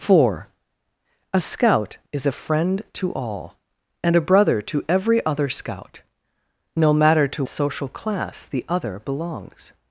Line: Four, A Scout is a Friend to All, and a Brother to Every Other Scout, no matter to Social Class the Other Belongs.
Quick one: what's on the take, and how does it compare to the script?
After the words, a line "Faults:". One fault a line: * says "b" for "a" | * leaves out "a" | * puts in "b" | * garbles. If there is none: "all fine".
Four, A Scout is a Friend to All, and a Brother to Every Other Scout, no matter to Social Class the Other Belongs.
Faults:
all fine